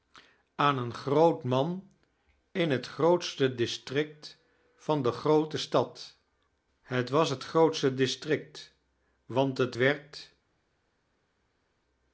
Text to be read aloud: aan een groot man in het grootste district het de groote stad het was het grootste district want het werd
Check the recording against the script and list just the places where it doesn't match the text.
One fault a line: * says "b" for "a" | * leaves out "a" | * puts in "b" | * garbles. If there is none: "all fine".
* says "van" for "het"